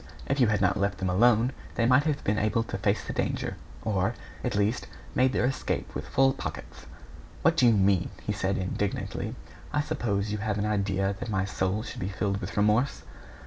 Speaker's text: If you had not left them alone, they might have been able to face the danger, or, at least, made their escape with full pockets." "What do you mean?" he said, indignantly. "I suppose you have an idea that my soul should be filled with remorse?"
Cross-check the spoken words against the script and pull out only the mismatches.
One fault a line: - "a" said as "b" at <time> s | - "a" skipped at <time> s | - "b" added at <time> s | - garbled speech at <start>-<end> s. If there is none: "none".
none